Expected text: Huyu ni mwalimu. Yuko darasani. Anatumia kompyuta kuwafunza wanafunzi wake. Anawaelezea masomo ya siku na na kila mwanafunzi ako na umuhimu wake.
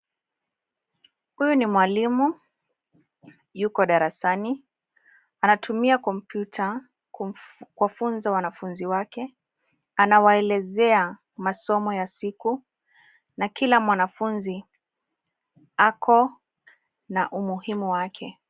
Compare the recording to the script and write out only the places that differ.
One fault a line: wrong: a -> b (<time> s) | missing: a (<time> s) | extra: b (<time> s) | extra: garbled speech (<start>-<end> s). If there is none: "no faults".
missing: na (13.5 s)